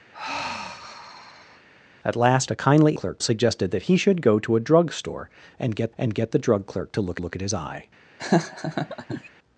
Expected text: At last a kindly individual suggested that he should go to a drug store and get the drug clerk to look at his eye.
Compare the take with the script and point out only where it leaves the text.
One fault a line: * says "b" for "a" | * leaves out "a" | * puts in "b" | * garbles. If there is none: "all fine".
* says "clerk" for "individual"
* puts in "and get"
* puts in "look"